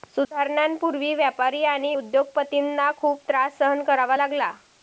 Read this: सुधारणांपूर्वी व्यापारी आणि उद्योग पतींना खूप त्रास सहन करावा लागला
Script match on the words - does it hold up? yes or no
yes